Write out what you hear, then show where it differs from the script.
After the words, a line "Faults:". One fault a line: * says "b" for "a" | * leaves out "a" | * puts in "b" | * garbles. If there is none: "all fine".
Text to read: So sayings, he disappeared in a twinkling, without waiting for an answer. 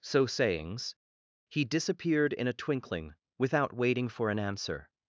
So sayings, he disappeared in a twinkling, without waiting for an answer.
Faults:
all fine